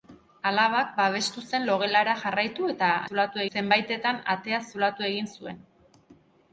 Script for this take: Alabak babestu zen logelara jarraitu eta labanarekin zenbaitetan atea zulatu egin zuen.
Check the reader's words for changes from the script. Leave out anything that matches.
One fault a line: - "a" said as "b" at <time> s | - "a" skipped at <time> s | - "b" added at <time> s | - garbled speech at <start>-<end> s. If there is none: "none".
- "labanarekin" said as "zulatu" at 3.1 s